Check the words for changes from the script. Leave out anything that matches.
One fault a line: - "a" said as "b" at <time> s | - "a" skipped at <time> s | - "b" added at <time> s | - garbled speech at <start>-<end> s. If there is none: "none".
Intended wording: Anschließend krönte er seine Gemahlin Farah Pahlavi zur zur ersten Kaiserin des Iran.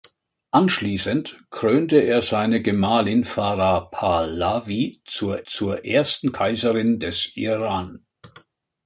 none